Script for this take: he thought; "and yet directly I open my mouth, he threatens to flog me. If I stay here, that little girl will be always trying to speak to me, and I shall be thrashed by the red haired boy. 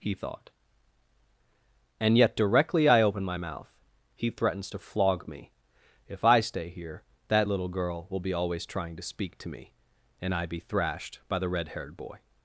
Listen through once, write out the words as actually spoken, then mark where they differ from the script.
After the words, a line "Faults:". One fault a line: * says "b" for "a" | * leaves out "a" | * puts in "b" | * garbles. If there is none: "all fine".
he thought; "and yet directly I open my mouth, he threatens to flog me. If I stay here, that little girl will be always trying to speak to me, and I be thrashed by the red haired boy.
Faults:
* leaves out "shall"